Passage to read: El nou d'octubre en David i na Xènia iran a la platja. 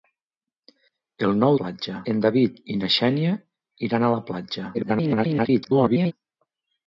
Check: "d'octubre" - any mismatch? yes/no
yes